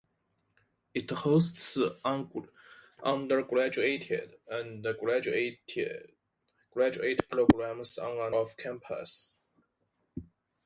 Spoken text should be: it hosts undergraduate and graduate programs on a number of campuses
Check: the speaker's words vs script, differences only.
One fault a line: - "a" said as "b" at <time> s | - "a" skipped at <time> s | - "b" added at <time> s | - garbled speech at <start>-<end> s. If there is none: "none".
- "number" skipped at 8.3 s